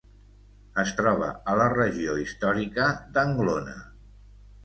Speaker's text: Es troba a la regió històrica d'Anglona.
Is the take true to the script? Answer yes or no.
yes